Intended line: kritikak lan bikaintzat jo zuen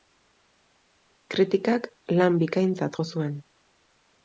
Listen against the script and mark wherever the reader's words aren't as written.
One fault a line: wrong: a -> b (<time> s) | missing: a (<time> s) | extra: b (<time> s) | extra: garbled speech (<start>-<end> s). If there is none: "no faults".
no faults